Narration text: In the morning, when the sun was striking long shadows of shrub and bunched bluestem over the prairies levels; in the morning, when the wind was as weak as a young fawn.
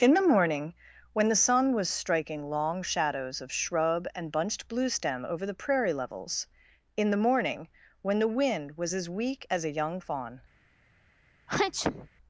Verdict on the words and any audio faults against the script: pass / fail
fail